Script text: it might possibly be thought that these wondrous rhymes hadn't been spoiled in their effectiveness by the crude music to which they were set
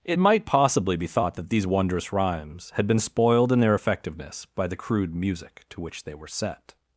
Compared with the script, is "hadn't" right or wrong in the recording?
wrong